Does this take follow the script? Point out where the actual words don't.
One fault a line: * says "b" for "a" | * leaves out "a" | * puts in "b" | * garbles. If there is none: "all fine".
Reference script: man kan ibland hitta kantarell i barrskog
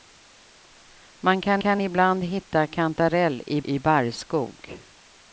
* puts in "kan"
* puts in "i"